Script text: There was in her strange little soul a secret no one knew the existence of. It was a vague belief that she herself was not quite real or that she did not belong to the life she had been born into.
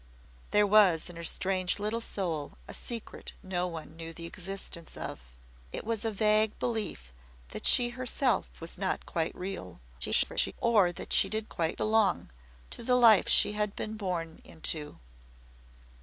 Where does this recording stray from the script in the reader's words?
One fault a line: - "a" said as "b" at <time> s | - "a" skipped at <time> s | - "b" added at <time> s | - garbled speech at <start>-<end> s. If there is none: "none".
- garbled speech at 10.0-10.5 s
- "not" said as "quite" at 11.5 s